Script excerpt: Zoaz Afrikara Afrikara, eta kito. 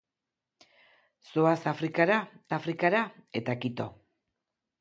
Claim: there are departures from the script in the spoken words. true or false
false